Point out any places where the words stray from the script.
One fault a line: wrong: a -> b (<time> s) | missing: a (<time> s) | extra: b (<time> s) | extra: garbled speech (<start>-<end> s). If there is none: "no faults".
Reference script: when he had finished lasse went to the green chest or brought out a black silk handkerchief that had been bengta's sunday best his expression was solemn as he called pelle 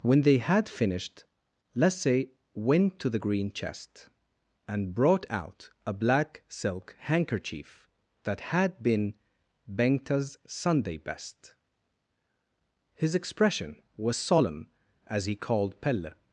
wrong: he -> they (0.2 s)
wrong: or -> and (4.7 s)